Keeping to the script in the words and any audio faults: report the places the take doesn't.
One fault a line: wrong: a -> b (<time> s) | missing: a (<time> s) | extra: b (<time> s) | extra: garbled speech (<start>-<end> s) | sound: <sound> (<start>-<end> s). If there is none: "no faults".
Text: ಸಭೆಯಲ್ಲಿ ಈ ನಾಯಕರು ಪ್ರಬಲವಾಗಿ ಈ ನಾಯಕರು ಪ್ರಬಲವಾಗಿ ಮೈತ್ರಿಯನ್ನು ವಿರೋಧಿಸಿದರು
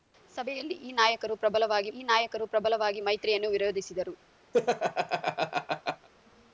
sound: laugh (4.5-6.1 s)